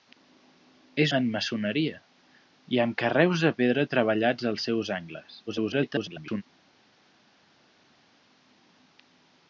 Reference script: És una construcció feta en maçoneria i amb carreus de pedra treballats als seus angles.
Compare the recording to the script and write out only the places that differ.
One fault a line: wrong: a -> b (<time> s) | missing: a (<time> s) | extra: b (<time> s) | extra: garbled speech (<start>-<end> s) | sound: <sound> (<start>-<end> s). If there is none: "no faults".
missing: una construcció feta (1.1 s)
extra: garbled speech (5.5-6.4 s)